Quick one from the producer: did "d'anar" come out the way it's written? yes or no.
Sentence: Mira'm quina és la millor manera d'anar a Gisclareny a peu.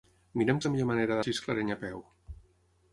no